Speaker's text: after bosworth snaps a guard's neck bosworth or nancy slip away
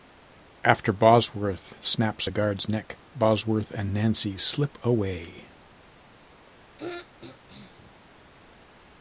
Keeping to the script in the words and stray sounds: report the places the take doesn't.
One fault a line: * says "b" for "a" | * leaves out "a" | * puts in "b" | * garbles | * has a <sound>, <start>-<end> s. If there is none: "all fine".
* says "and" for "or"
* has a throat clearing, 6.8-7.9 s